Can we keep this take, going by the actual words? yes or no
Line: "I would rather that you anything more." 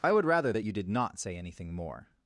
no